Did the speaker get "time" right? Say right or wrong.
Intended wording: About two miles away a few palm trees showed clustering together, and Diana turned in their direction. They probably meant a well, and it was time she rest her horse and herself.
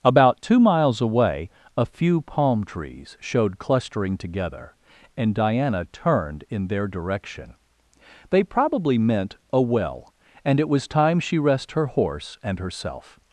right